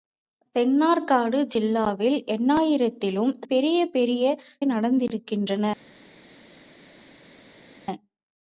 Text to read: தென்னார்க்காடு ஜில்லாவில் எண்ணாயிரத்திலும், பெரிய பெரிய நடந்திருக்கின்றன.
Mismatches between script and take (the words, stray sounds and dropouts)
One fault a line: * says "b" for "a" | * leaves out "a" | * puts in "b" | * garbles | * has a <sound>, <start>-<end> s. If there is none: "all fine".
all fine